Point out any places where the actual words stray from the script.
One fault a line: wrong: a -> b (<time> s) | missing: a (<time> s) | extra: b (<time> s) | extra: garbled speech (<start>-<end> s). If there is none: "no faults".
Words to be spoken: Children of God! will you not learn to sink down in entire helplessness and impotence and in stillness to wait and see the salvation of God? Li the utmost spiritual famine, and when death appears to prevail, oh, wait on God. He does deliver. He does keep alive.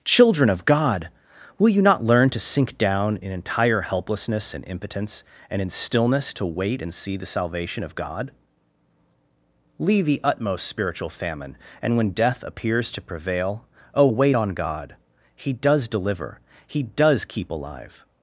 wrong: Li -> Leave (9.8 s)